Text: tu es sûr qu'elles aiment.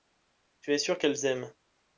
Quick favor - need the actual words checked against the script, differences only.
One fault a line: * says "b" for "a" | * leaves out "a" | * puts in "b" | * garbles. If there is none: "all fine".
all fine